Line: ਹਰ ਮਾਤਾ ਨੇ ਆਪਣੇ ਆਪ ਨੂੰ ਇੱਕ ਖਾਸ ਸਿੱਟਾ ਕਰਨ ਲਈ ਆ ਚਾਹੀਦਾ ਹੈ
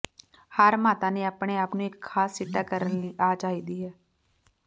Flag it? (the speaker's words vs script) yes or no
no